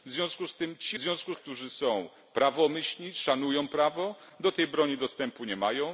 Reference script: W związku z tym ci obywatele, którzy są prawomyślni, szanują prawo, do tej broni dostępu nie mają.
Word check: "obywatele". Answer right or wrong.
wrong